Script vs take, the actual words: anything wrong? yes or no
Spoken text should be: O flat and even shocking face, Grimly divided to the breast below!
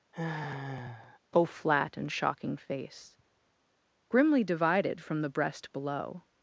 yes